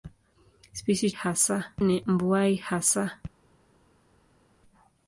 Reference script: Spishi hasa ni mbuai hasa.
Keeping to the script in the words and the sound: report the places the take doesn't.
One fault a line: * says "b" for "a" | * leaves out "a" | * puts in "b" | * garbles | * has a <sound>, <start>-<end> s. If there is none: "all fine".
all fine